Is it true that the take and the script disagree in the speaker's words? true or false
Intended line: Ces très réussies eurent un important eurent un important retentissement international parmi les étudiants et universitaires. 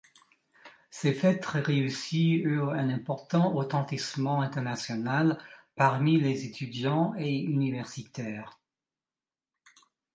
true